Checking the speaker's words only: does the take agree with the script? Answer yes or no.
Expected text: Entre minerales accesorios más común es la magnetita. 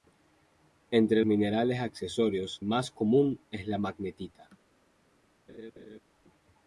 yes